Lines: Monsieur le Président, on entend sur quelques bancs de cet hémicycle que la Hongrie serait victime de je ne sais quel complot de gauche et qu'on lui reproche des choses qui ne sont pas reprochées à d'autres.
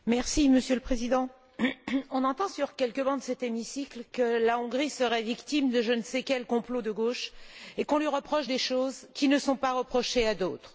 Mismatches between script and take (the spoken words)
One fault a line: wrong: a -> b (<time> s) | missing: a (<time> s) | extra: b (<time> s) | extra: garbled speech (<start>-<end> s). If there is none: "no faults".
no faults